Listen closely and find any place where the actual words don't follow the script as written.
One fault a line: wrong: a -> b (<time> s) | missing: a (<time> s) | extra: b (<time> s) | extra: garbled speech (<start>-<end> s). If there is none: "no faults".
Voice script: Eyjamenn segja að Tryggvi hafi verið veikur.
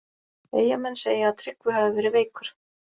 no faults